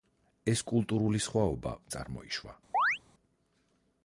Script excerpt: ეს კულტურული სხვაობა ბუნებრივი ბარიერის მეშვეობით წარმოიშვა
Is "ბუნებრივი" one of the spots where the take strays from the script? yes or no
yes